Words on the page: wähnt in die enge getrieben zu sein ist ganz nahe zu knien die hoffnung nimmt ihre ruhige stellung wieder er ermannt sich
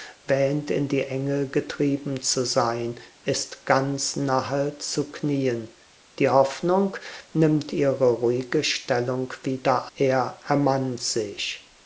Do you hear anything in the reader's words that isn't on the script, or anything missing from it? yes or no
no